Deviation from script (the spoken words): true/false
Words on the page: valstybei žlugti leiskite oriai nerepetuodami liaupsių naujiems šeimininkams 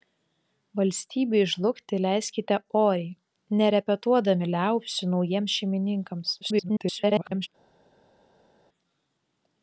true